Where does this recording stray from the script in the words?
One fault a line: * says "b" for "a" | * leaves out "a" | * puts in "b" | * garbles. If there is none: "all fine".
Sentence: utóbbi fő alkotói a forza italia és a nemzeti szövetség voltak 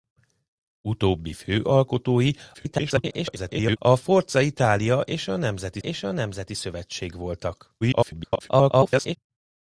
* garbles
* puts in "és a nemzeti"
* garbles